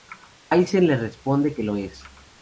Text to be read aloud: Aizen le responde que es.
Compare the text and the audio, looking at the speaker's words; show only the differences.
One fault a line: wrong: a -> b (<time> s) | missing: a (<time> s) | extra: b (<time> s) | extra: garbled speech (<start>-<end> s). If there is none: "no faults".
extra: lo (1.6 s)